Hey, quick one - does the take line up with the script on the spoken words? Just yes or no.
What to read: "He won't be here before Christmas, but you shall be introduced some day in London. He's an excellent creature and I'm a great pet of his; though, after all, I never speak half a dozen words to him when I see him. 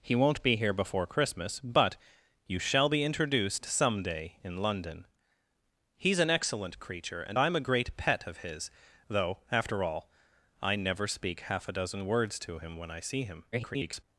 no